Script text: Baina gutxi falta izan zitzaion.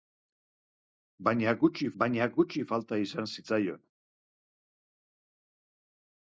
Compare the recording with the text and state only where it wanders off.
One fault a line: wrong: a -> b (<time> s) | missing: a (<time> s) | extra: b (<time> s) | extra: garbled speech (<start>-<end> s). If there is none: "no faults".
extra: baina gutxi (2.0 s)